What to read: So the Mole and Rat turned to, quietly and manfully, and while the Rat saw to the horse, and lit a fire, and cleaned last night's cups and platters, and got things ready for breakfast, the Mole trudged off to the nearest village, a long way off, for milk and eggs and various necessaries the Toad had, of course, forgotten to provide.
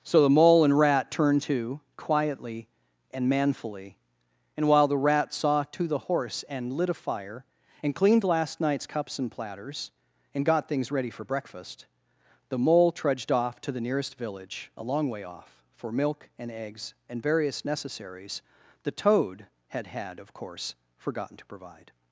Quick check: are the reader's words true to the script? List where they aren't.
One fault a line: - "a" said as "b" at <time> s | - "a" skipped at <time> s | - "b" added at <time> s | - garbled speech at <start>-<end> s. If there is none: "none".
- "had" added at 19.9 s